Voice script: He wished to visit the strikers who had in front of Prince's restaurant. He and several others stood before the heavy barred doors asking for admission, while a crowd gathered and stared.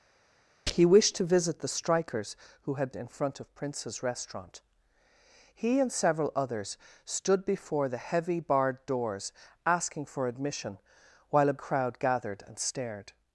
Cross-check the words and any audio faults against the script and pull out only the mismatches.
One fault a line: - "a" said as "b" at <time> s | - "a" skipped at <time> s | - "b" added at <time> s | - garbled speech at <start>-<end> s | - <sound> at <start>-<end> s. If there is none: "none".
none